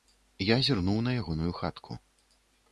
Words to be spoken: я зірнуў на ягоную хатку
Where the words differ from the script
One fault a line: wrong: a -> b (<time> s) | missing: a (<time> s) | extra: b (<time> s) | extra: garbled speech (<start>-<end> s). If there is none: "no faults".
no faults